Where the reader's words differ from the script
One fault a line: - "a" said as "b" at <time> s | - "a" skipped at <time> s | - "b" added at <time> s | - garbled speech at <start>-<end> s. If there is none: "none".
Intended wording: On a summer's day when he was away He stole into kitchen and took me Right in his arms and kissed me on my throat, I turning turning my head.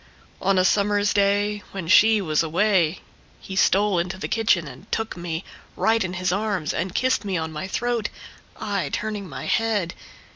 - "he" said as "she" at 1.9 s
- "the" added at 4.2 s
- "turning" skipped at 9.3 s